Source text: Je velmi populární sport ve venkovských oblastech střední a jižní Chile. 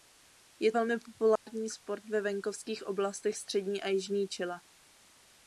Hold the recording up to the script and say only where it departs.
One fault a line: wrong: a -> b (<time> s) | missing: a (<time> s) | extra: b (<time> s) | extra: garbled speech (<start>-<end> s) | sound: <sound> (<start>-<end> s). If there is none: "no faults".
sound: dropout (1.4-1.5 s)